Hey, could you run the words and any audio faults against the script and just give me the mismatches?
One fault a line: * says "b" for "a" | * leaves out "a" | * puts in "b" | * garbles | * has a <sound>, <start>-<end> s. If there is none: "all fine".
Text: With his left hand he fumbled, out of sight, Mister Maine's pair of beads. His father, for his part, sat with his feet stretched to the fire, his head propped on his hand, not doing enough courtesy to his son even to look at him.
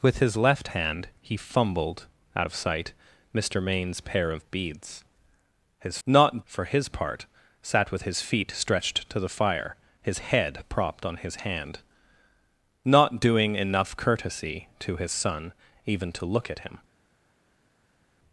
* says "not" for "father"